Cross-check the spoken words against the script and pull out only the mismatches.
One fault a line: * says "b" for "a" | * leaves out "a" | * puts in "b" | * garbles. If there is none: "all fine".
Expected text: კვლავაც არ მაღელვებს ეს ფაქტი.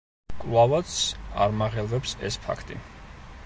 all fine